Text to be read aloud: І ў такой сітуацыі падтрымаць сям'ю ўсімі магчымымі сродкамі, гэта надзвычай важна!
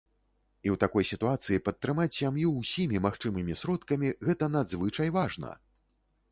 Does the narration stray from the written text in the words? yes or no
no